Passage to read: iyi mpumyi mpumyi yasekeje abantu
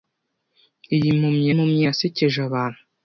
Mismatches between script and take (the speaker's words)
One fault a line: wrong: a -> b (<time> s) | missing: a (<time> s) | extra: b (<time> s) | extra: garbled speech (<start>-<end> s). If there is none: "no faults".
no faults